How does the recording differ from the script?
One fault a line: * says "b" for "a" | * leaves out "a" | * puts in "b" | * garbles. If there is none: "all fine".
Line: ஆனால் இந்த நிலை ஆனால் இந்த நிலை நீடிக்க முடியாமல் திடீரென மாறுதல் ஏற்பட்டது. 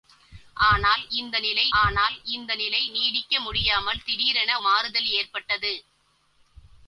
all fine